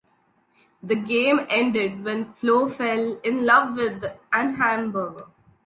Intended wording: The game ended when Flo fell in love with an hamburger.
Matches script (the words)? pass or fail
pass